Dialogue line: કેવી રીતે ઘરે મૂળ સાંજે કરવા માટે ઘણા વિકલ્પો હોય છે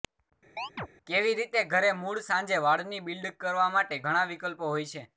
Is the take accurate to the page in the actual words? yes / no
no